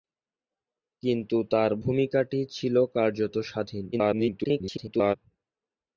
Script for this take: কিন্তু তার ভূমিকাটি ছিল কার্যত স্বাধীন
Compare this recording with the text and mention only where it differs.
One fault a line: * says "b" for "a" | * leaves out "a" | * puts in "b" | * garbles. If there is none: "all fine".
* garbles